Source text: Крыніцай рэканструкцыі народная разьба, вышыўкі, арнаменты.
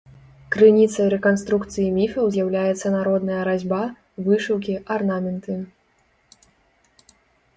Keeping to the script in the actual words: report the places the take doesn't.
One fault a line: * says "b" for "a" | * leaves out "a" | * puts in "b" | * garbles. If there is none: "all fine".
* puts in "міфаў з'яўляецца"